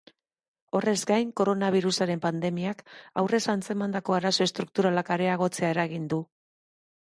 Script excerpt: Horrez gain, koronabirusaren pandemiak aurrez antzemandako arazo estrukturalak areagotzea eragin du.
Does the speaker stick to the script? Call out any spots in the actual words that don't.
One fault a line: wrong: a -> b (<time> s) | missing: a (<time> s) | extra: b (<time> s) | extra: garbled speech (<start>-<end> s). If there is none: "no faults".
no faults